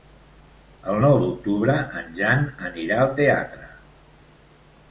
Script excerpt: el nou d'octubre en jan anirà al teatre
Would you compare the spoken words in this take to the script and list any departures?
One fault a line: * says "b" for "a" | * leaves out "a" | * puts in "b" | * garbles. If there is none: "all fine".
all fine